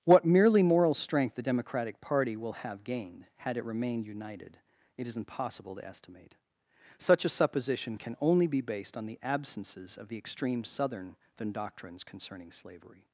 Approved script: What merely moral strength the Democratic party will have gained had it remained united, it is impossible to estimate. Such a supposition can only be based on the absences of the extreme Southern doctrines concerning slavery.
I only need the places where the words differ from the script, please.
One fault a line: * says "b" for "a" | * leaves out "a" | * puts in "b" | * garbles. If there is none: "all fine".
all fine